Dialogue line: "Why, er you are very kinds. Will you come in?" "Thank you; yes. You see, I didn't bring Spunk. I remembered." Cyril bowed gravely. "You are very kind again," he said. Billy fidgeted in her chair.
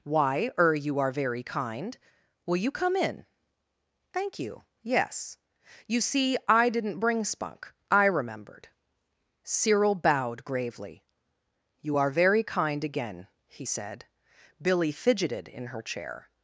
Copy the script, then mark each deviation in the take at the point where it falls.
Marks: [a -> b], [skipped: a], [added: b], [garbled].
"Why, er you are very [kinds. -> kind] Will you come in?" "Thank you; yes. You see, I didn't bring Spunk. I remembered." Cyril bowed gravely. "You are very kind again," he said. Billy fidgeted in her chair.